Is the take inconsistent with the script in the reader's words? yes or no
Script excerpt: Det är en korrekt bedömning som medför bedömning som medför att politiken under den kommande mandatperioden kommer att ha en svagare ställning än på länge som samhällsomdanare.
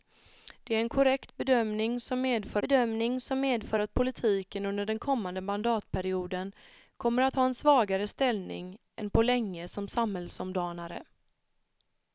no